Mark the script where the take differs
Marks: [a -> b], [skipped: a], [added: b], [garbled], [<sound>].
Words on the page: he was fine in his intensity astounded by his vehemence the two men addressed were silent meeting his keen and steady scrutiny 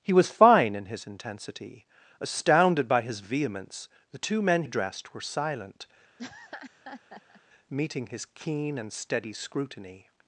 he was fine in his intensity astounded by his vehemence the two men addressed were silent [laugh] meeting his keen and steady scrutiny